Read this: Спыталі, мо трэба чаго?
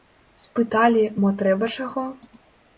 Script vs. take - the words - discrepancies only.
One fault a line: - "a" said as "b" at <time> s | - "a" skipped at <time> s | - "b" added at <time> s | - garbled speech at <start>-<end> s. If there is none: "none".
none